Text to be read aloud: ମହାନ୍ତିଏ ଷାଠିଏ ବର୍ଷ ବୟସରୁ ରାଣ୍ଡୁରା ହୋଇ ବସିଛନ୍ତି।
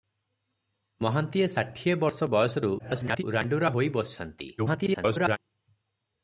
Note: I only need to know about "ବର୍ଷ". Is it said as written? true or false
true